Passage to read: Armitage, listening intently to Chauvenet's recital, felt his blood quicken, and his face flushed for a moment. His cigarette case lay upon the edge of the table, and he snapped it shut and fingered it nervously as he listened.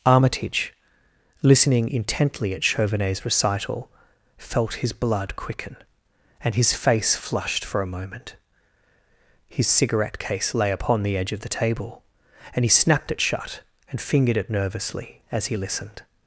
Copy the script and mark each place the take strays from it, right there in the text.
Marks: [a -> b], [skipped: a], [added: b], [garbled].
Armitage, listening intently [to -> at] Chauvenet's recital, felt his blood quicken, and his face flushed for a moment. His cigarette case lay upon the edge of the table, and he snapped it shut and fingered it nervously as he listened.